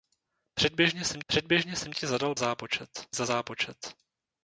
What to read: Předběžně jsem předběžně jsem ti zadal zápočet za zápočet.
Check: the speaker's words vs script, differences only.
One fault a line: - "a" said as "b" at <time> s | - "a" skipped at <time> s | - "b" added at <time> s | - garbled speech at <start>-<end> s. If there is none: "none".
none